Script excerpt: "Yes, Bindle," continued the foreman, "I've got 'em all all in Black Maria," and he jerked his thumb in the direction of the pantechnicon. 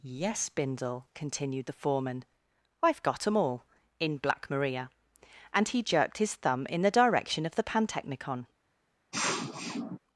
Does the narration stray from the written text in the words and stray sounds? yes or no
yes